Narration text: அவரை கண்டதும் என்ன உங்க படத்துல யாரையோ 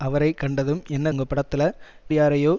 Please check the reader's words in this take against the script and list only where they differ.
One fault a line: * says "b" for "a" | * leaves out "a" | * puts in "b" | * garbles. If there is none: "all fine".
all fine